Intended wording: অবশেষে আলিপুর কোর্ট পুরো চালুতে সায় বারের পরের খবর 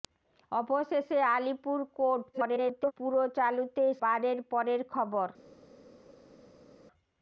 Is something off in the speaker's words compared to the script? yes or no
yes